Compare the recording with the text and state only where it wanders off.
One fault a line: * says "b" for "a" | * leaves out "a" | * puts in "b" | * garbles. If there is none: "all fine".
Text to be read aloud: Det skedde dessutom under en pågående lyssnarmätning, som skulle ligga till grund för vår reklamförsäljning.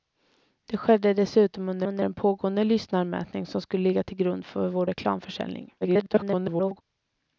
* puts in "under"
* garbles